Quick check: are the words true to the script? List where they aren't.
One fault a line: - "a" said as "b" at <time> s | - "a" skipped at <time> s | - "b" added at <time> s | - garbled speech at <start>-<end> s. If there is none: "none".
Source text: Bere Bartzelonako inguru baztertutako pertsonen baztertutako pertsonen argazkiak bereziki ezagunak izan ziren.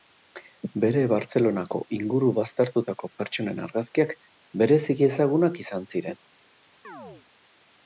- "baztertutako pertsonen" skipped at 3.6 s